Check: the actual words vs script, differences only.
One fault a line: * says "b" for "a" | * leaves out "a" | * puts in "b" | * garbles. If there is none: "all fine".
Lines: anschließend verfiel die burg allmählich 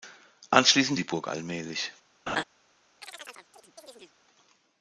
* leaves out "verfiel"